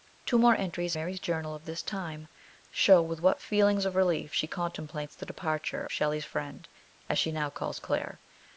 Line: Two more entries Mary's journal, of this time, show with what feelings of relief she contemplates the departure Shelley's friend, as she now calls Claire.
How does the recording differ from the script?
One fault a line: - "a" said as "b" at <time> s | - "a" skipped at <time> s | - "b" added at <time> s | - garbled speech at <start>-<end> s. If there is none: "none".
none